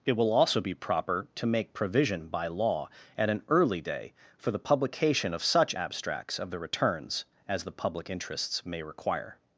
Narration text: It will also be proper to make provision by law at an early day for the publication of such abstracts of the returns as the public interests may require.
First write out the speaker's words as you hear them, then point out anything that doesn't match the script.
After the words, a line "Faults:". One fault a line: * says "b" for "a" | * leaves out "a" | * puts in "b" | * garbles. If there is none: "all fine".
It will also be proper to make provision by law at an early day for the publication of such abstracts of the returns as the public interests may require.
Faults:
all fine